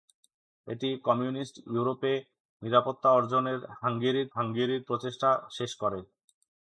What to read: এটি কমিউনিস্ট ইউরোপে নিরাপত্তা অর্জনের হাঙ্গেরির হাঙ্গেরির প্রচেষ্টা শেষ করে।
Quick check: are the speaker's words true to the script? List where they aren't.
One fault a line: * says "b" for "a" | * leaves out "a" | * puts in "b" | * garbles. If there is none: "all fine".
all fine